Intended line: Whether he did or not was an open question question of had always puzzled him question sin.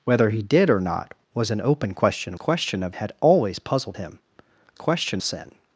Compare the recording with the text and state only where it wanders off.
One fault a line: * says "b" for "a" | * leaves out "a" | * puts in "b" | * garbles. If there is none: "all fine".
all fine